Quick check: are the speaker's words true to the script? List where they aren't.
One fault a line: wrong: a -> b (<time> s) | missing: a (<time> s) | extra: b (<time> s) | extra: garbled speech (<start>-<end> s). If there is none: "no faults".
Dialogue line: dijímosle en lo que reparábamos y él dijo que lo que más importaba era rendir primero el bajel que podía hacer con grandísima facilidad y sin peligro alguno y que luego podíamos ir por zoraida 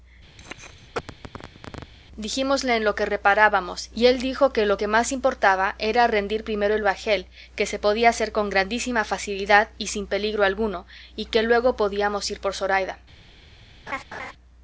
extra: se (7.7 s)